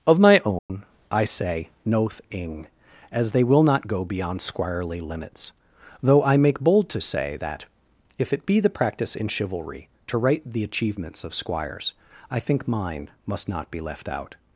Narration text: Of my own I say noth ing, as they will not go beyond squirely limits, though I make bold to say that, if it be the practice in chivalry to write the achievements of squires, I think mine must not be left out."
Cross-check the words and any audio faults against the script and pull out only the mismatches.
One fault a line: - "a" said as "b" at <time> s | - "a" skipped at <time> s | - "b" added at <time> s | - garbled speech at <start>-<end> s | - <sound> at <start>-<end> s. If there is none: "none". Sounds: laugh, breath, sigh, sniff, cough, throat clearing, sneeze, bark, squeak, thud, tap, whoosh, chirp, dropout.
- dropout at 0.6-0.7 s